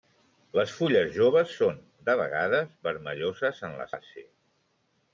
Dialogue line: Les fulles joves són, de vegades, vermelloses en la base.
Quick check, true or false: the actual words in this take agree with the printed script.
true